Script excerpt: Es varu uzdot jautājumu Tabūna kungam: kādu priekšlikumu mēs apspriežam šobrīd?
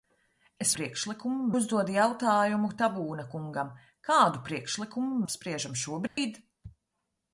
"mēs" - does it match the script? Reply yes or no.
no